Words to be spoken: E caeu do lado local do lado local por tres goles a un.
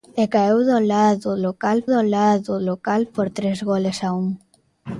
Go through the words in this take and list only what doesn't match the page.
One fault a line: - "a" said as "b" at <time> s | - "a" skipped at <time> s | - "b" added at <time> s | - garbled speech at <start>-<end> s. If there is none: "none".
none